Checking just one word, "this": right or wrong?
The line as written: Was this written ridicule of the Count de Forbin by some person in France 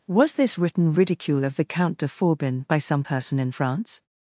right